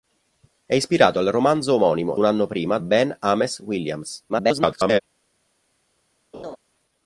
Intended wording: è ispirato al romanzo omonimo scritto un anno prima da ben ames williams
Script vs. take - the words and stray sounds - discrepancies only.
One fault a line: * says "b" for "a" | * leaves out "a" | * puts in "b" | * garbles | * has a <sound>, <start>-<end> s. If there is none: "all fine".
* leaves out "scritto"
* leaves out "da"
* garbles
* has a laugh, 6.3-6.6 s